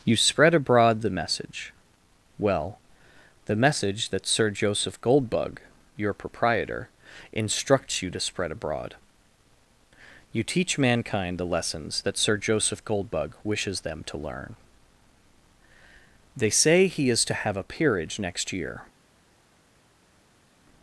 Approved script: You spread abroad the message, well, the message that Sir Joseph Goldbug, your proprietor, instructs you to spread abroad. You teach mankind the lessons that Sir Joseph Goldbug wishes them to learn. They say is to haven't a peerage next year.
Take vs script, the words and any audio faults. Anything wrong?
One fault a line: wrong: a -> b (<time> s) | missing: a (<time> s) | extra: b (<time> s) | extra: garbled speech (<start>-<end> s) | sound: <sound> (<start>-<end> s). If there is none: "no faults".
extra: he (16.9 s)
wrong: haven't -> have (17.3 s)